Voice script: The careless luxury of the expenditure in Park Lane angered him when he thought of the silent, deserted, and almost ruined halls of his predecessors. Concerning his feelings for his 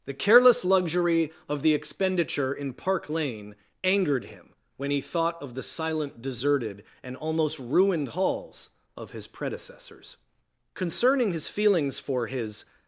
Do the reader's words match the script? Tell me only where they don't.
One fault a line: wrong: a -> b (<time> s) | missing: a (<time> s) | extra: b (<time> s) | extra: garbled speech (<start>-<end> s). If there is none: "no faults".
no faults